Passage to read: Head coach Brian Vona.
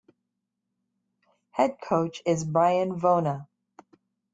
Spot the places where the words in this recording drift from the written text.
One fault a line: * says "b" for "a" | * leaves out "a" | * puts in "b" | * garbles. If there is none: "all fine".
* puts in "is"